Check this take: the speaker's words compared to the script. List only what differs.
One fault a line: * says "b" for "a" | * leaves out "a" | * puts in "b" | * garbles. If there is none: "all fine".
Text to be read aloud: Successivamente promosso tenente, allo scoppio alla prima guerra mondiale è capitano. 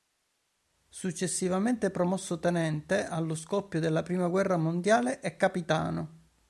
* says "della" for "alla"